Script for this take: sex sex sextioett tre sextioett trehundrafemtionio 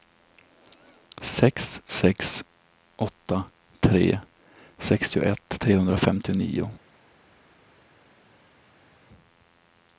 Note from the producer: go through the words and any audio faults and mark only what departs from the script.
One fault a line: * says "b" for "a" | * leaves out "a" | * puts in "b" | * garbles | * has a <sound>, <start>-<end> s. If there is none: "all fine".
* says "åtta" for "sextioett"